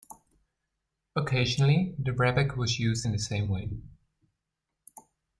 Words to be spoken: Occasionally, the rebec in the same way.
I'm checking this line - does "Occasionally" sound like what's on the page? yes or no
yes